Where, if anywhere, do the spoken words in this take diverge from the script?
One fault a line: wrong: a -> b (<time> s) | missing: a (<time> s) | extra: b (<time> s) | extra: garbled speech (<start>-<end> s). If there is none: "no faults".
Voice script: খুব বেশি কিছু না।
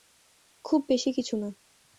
no faults